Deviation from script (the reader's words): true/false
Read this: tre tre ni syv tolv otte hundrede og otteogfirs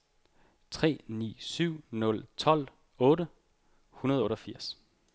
true